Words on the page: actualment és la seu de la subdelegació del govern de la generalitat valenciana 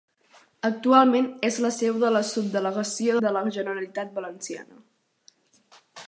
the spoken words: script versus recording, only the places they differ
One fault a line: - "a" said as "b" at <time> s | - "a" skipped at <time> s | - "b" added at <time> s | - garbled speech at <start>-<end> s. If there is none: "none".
- "del govern" skipped at 3.2 s